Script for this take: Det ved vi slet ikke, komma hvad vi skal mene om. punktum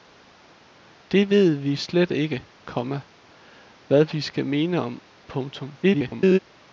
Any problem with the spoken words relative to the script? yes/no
yes